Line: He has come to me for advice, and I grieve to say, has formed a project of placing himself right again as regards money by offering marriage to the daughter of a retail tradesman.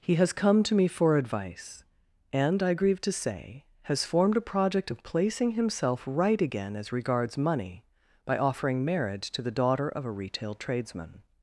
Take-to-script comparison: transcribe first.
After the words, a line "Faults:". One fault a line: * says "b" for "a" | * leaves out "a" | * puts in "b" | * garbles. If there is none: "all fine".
He has come to me for advice, and I grieve to say, has formed a project of placing himself right again as regards money by offering marriage to the daughter of a retail tradesman.
Faults:
all fine